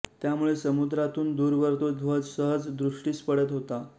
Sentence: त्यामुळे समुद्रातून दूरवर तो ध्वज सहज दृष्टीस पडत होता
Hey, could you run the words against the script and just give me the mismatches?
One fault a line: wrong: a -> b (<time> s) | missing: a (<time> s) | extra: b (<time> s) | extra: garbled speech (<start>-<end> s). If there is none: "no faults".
no faults